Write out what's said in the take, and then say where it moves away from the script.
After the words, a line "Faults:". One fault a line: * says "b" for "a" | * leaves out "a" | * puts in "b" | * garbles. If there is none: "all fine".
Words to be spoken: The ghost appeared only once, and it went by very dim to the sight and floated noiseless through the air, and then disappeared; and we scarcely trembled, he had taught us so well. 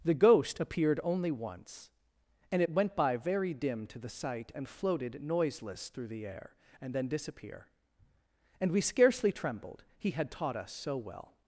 The ghost appeared only once, and it went by very dim to the sight and floated noiseless through the air, and then disappear; and we scarcely trembled, he had taught us so well.
Faults:
* says "disappear" for "disappeared"